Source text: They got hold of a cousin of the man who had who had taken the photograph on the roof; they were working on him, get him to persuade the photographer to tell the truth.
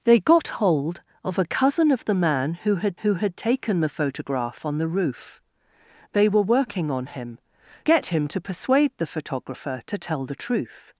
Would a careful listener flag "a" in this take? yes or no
no